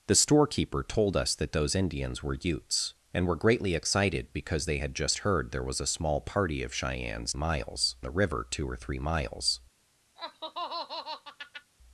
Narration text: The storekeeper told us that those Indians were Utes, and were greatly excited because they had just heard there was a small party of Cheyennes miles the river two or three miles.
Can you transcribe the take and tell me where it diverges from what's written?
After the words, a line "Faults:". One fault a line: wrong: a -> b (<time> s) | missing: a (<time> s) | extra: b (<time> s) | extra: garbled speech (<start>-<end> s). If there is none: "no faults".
The storekeeper told us that those Indians were Utes, and were greatly excited because they had just heard there was a small party of Cheyennes miles the river two or three miles.
Faults:
no faults